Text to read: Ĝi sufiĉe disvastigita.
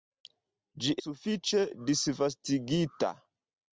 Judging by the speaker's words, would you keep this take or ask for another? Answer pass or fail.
pass